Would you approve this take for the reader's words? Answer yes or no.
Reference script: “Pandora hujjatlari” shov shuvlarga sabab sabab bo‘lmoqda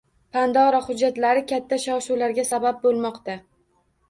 no